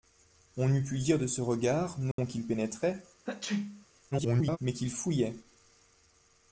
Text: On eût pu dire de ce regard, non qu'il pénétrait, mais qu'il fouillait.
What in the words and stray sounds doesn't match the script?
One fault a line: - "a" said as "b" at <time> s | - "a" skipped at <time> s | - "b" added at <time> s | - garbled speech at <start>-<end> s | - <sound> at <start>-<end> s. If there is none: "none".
- dropout at 2.1-2.2 s
- sneeze at 3.3-3.9 s
- garbled speech at 4.1-4.6 s